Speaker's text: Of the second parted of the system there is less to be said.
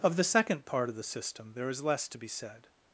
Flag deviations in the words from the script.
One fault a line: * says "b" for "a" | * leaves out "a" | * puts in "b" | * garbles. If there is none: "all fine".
* says "part" for "parted"